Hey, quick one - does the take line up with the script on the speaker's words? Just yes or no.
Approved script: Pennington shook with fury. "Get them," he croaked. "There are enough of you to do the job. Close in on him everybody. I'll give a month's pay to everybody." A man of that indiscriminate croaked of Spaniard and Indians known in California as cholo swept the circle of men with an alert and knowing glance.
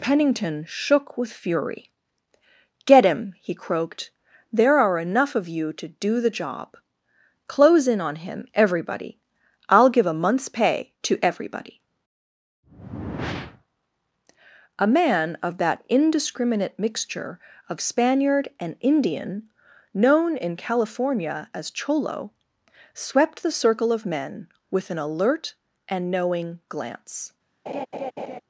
no